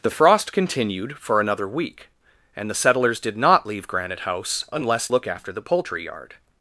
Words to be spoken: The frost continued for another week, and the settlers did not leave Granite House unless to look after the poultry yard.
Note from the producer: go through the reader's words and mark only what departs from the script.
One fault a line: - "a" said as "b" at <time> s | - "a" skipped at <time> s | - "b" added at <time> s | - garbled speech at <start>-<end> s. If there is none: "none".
- "to" skipped at 5.1 s